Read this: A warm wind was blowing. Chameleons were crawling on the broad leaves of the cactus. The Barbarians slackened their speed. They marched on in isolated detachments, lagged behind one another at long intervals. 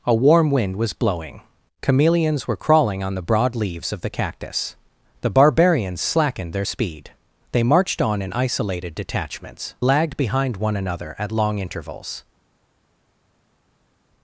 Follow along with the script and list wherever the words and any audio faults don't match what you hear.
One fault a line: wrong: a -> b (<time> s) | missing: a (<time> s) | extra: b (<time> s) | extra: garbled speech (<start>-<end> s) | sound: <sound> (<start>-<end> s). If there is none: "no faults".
no faults